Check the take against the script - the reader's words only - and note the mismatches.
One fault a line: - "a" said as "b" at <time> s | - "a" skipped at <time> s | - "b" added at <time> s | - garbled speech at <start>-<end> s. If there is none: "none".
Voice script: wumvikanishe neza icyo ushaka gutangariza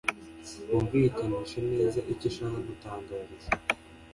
none